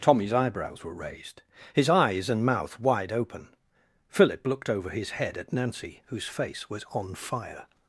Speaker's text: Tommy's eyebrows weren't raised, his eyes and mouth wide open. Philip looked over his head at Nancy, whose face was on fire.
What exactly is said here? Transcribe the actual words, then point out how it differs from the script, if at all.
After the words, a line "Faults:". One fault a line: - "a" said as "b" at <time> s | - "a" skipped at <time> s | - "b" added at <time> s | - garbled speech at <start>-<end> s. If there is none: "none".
Tommy's eyebrows were raised, his eyes and mouth wide open. Philip looked over his head at Nancy, whose face was on fire.
Faults:
- "weren't" said as "were" at 0.8 s